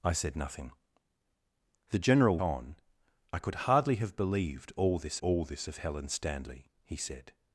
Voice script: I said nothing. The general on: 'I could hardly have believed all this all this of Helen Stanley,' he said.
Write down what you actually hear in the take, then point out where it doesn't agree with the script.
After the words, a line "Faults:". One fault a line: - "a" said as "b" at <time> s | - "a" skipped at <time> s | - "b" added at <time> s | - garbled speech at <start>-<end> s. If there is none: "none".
I said nothing. The general on: 'I could hardly have believed all this all this of Helen Stanley,' he said.
Faults:
none